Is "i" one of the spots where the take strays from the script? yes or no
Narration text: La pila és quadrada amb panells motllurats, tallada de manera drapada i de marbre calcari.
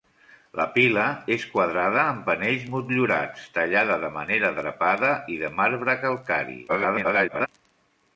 no